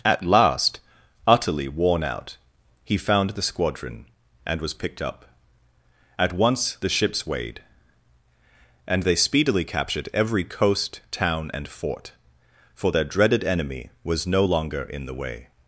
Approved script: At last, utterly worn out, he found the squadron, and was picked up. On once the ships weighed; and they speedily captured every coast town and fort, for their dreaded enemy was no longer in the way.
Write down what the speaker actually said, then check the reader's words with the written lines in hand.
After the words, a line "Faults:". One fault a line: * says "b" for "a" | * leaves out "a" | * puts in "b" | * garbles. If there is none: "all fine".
At last, utterly worn out, he found the squadron, and was picked up. At once the ships weighed; and they speedily captured every coast town and fort, for their dreaded enemy was no longer in the way.
Faults:
* says "At" for "On"